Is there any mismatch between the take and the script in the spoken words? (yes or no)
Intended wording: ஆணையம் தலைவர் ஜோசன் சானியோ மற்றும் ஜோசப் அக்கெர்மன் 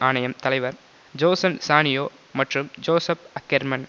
no